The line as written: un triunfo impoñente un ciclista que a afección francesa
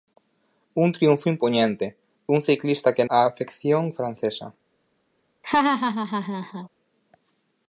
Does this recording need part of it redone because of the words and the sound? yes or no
yes